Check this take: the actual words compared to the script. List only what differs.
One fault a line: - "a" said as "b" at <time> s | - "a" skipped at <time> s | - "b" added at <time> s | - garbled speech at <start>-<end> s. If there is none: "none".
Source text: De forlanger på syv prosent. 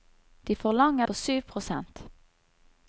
none